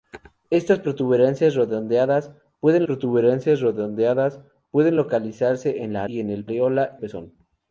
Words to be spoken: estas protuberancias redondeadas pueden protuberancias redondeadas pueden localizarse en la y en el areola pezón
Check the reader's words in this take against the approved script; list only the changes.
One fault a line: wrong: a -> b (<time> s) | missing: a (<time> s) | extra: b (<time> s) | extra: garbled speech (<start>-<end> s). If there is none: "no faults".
no faults